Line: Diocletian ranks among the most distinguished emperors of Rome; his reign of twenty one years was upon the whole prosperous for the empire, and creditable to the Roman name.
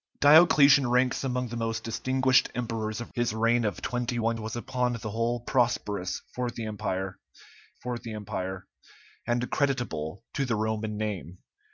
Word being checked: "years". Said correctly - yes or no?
no